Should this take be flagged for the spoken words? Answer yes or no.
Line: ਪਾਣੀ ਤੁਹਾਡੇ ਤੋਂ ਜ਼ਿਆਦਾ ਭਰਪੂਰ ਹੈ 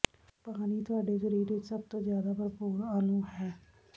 yes